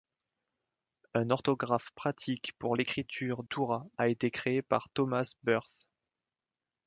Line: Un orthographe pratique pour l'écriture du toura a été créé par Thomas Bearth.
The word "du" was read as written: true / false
false